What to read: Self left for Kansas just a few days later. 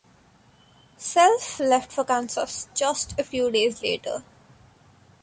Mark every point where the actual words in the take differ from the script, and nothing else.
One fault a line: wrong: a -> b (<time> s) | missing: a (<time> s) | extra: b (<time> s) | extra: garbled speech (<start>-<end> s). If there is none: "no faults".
no faults